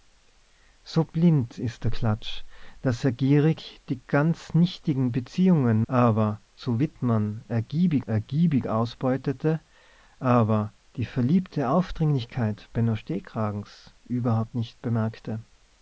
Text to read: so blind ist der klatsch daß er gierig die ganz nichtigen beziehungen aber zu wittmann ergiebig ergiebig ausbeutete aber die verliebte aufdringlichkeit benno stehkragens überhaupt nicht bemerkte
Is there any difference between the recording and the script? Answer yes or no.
no